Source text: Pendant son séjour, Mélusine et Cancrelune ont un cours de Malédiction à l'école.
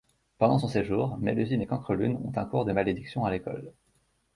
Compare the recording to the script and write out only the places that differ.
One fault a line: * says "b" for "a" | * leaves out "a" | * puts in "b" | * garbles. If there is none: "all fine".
all fine